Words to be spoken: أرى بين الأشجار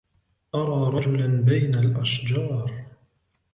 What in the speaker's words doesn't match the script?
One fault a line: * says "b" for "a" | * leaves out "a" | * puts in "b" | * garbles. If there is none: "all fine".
* puts in "رجلا"